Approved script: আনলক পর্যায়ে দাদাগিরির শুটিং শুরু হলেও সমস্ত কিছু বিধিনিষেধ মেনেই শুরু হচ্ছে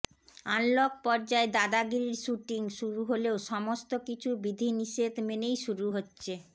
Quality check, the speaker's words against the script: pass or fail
pass